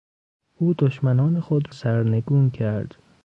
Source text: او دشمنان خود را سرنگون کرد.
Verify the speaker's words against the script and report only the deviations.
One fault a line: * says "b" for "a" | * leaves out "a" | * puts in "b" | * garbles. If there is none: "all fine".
* leaves out "را"